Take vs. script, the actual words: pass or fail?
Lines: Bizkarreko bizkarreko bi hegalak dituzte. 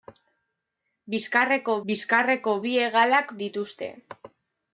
pass